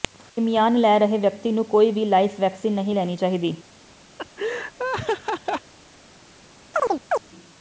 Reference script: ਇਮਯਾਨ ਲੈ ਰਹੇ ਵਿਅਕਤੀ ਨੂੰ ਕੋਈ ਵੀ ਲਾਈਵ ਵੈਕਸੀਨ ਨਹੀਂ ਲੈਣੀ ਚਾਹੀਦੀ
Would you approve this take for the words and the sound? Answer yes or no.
no